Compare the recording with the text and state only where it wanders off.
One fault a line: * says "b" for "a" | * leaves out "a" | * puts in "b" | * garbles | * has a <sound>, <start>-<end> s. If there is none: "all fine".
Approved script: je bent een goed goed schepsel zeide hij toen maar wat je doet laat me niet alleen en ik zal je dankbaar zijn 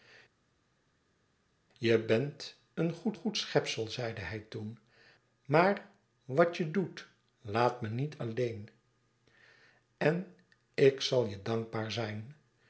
all fine